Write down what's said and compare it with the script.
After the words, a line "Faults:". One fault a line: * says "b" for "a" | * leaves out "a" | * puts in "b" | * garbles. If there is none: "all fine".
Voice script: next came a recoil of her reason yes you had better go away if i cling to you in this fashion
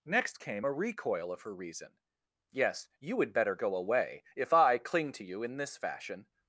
next came a recoil of her reason yes you had better go away if i cling to you in this fashion
Faults:
all fine